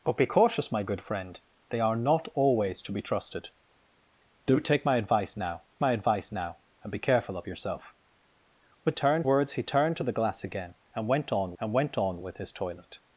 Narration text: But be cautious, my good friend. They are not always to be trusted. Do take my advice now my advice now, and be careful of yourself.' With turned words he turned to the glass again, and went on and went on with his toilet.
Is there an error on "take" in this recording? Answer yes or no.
no